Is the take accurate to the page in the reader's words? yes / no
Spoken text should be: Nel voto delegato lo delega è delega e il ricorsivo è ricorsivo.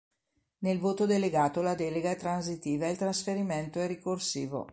no